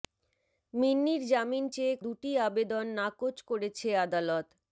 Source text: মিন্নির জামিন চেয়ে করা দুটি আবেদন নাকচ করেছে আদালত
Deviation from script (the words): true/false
true